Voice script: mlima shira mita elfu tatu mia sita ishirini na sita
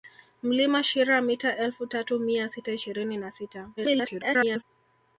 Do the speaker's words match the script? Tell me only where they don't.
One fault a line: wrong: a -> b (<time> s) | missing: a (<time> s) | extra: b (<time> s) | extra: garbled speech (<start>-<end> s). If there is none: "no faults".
extra: garbled speech (3.8-4.6 s)